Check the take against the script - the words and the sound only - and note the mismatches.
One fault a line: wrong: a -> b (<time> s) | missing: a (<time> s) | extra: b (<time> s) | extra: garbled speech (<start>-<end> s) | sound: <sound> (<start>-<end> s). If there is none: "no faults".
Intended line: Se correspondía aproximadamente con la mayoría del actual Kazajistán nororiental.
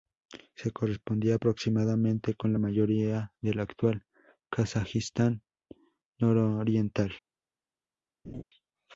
sound: laugh (8.2-8.4 s)